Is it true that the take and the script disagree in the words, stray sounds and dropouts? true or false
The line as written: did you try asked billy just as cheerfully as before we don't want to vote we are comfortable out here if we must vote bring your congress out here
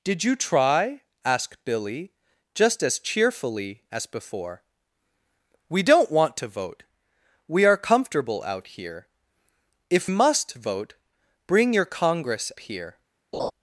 true